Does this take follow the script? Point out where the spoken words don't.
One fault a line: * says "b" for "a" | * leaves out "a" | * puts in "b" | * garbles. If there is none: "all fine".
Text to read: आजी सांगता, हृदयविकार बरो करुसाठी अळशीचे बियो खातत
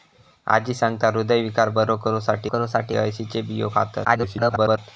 * puts in "करुसाठी"
* garbles